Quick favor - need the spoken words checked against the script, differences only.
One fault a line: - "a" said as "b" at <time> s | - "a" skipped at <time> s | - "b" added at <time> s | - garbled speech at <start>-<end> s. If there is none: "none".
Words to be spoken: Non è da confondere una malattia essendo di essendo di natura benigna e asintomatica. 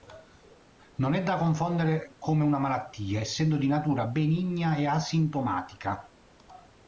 - "come" added at 2.2 s
- "essendo di" skipped at 3.7 s